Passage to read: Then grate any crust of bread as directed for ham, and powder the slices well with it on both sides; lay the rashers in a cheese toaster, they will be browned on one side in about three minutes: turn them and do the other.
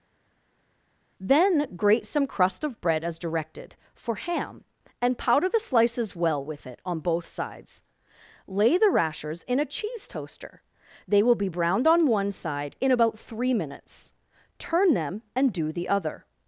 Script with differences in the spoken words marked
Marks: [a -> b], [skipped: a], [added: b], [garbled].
Then grate [any -> some] crust of bread as directed for ham, and powder the slices well with it on both sides; lay the rashers in a cheese toaster, they will be browned on one side in about three minutes: turn them and do the other.